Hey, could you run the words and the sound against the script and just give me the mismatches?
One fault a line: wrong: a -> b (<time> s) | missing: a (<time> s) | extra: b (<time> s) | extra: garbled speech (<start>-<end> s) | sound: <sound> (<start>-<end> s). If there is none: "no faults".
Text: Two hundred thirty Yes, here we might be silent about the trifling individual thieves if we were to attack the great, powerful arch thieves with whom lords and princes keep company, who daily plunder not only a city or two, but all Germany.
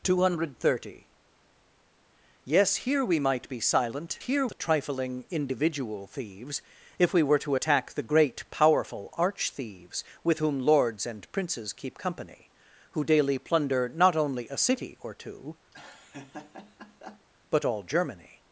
wrong: about -> here (4.2 s)
sound: laugh (15.7-17.3 s)